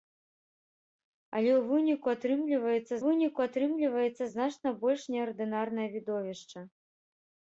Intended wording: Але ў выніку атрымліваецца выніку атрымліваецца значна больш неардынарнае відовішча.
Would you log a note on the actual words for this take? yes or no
no